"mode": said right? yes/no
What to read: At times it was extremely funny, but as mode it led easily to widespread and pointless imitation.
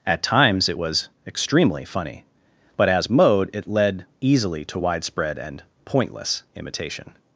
yes